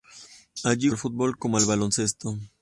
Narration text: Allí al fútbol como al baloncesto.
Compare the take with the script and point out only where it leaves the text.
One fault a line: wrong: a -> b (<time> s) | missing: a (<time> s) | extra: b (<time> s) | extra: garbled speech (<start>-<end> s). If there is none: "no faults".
no faults